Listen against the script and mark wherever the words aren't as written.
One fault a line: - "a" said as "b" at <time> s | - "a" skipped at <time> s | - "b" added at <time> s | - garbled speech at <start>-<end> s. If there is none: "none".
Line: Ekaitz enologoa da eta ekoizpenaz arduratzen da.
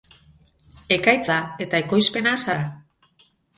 - "enologoa" skipped at 1.3 s
- "arduratzen" skipped at 2.4 s